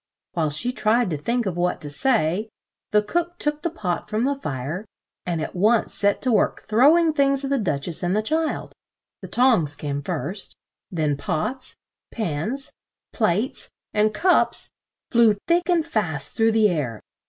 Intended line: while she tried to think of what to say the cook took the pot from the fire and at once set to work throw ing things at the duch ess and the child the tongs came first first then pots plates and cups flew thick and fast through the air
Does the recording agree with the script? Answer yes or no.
no